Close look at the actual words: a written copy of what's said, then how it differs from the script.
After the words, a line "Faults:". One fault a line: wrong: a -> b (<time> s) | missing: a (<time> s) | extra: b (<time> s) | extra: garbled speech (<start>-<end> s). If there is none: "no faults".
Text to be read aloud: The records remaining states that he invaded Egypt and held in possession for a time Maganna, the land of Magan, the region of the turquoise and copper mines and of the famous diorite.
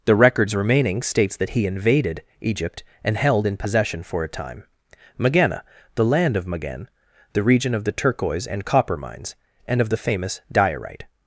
The records remaining states that he invaded Egypt and held in possession for a time Maganna, the land of Magan, the region of the turquoise and copper mines and of the famous diorite.
Faults:
no faults